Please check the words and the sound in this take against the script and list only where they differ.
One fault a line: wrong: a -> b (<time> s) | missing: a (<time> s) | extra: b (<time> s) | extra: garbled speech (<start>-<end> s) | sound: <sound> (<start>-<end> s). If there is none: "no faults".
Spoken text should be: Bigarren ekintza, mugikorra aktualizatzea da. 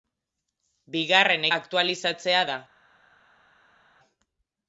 missing: ekintza mugikorra (1.4 s)